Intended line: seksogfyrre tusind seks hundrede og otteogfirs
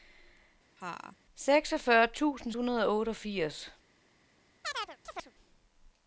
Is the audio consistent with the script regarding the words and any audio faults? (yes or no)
no